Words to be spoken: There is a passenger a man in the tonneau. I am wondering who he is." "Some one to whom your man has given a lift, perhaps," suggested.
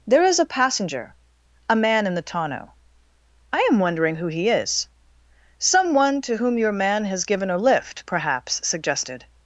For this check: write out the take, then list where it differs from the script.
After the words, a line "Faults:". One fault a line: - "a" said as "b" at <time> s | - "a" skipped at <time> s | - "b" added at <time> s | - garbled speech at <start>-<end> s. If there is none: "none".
There is a passenger a man in the tonneau. I am wondering who he is." "Some one to whom your man has given a lift, perhaps," suggested.
Faults:
none